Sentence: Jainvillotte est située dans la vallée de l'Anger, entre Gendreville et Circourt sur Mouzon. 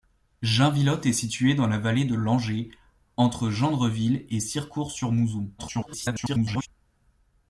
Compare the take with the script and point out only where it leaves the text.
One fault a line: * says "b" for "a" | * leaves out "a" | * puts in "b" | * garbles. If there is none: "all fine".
* garbles